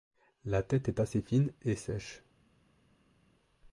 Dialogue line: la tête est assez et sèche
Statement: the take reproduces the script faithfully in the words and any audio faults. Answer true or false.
false